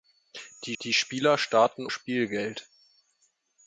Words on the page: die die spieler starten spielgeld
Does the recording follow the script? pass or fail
pass